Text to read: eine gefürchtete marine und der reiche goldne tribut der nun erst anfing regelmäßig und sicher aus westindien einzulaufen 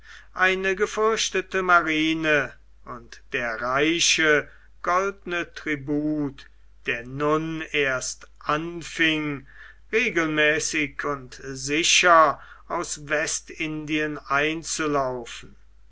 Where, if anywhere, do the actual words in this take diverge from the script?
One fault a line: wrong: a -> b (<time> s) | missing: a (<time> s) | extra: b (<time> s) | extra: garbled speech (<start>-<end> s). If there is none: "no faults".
no faults